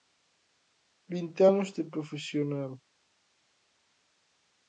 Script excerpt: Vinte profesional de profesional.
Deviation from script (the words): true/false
true